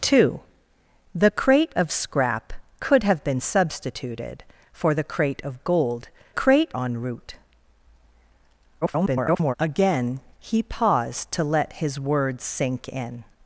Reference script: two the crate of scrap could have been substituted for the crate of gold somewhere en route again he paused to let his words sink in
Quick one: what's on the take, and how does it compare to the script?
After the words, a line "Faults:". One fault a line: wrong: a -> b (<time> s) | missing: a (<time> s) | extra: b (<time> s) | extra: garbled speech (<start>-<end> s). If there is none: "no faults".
two the crate of scrap could have been substituted for the crate of gold crate en route [garbled] again he paused to let his words sink in
Faults:
wrong: somewhere -> crate (6.3 s)
extra: garbled speech (8.8-9.5 s)